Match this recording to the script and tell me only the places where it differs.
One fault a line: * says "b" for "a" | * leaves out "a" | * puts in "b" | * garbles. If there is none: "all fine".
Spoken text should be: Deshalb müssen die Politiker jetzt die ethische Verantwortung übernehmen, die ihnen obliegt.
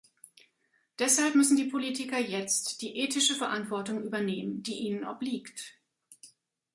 all fine